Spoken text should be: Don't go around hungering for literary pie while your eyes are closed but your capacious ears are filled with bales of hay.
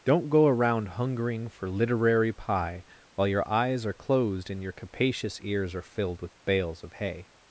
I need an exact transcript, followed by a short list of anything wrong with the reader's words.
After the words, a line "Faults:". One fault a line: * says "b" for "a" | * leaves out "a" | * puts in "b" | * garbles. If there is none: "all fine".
Don't go around hungering for literary pie while your eyes are closed and your capacious ears are filled with bales of hay.
Faults:
* says "and" for "but"